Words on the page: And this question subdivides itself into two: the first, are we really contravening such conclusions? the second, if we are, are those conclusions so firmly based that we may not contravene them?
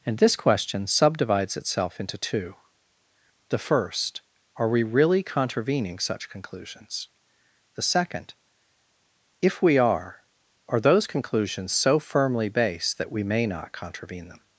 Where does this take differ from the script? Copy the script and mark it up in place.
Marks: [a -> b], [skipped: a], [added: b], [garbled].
And this question subdivides itself into two: the first, are we really contravening such conclusions? the second, if we are, are those conclusions so firmly based that we may not contravene them?